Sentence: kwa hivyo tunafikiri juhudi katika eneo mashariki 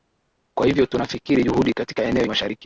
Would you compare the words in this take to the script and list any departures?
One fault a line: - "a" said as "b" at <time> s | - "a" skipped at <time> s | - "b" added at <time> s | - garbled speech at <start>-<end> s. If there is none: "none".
none